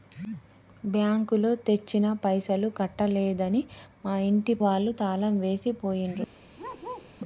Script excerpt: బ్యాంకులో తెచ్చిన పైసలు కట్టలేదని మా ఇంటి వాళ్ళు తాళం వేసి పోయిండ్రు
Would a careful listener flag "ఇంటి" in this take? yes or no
no